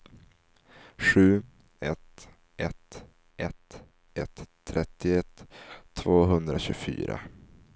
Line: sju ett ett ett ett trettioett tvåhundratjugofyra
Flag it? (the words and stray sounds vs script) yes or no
no